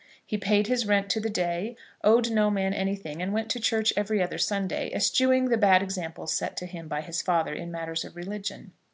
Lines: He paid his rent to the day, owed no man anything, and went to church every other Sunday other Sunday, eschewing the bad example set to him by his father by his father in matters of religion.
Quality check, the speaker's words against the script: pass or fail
fail